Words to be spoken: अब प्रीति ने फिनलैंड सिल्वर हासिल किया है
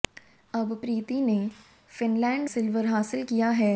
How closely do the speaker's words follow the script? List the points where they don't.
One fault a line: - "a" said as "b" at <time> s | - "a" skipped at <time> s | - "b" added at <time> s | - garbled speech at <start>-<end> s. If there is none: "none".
none